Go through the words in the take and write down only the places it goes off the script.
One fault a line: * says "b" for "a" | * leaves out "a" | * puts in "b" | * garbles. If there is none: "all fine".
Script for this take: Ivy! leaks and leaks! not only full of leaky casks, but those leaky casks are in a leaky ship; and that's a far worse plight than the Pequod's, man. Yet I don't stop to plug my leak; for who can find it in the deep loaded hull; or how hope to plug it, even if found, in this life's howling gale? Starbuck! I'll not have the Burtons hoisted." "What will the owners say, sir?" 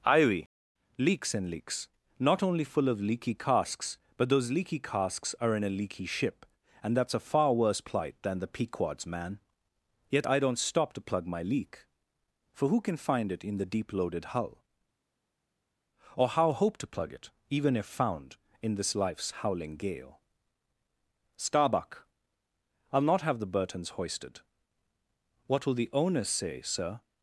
all fine